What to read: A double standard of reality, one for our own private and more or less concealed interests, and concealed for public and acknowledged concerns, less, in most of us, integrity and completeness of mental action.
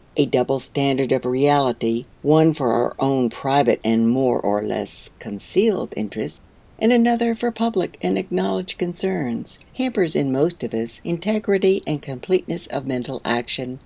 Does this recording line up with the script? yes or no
no